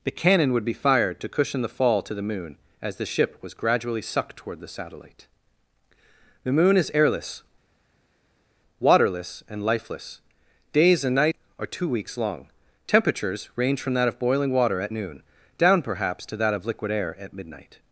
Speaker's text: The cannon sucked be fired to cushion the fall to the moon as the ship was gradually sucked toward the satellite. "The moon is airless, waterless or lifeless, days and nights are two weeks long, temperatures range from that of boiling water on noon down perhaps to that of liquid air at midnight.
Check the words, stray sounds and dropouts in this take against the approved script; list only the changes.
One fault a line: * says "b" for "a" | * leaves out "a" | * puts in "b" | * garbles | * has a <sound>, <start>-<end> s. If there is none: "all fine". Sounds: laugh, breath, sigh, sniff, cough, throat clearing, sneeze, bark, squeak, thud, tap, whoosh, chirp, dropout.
* says "would" for "sucked"
* says "and" for "or"
* says "at" for "on"